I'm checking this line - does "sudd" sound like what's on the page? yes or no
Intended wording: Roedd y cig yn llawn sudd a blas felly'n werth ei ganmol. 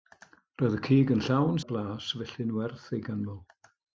no